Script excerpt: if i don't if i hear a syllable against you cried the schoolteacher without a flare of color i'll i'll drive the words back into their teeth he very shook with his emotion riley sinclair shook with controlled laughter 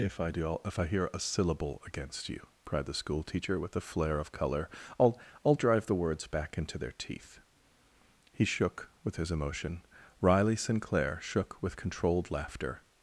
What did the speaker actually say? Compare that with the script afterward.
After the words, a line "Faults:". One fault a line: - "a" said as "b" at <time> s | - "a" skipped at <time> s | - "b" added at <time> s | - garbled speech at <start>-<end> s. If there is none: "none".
if i do if i hear a syllable against you cried the schoolteacher with a flare of color i'll i'll drive the words back into their teeth he shook with his emotion riley sinclair shook with controlled laughter
Faults:
- "don't" said as "do" at 0.3 s
- "without" said as "with" at 3.6 s
- "very" skipped at 8.4 s